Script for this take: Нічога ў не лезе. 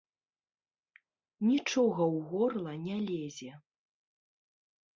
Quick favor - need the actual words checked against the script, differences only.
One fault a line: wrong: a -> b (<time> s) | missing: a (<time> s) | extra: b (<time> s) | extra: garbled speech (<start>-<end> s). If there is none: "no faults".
extra: горла (2.3 s)